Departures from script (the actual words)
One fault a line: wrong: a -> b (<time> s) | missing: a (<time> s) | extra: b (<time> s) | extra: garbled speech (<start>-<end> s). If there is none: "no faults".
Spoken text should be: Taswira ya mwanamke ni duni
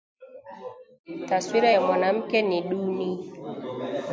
no faults